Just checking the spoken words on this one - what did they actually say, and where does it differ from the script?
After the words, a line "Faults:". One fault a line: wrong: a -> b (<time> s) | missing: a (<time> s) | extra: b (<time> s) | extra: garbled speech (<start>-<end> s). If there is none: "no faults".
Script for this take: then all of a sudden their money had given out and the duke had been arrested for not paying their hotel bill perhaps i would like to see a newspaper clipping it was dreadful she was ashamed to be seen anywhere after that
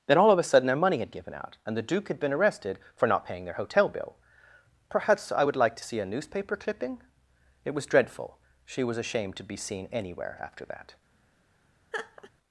then all of a sudden their money had given out and the duke had been arrested for not paying their hotel bill perhaps i would like to see a newspaper clipping it was dreadful she was ashamed to be seen anywhere after that
Faults:
no faults